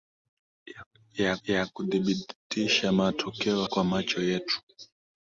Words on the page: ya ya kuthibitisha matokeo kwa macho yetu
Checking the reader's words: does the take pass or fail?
pass